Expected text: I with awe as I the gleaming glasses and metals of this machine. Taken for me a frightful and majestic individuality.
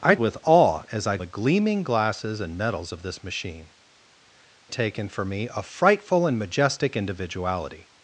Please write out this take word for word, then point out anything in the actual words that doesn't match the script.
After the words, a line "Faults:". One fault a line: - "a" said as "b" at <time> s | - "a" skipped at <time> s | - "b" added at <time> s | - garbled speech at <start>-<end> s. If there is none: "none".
I with awe as I the gleaming glasses and metals of this machine. Taken for me a frightful and majestic individuality.
Faults:
none